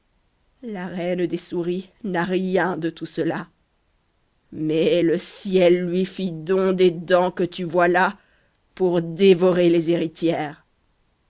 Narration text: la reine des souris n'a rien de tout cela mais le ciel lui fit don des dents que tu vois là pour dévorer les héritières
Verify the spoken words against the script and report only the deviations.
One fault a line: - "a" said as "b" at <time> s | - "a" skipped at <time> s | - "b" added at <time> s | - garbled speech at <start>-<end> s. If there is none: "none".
none